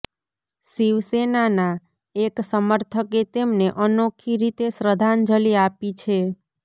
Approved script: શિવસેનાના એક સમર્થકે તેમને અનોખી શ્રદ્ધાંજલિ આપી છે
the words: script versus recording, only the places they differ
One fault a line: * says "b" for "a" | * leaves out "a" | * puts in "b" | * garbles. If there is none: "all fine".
* puts in "રીતે"